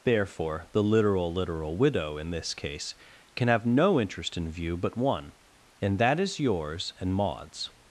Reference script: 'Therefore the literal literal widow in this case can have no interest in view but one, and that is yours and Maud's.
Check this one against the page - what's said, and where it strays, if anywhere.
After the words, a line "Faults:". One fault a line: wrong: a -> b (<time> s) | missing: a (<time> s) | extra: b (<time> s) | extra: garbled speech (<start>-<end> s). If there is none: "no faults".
'Therefore the literal literal widow in this case can have no interest in view but one, and that is yours and Maud's.
Faults:
no faults